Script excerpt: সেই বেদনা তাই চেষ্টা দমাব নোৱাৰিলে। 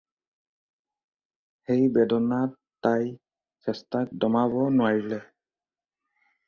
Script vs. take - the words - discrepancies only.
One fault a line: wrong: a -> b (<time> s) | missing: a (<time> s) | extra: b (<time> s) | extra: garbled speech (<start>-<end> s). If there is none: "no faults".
no faults